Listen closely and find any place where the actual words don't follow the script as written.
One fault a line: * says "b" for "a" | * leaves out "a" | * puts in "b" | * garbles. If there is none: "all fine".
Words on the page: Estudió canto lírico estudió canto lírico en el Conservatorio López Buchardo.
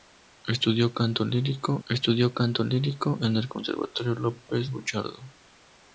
all fine